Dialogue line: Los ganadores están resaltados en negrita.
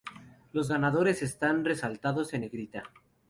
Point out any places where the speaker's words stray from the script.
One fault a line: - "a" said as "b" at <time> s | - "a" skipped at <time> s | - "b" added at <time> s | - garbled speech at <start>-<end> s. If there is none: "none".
none